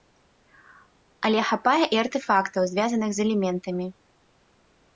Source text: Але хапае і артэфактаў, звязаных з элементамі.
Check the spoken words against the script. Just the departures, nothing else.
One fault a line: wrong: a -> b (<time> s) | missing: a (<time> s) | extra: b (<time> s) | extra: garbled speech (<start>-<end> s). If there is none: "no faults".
no faults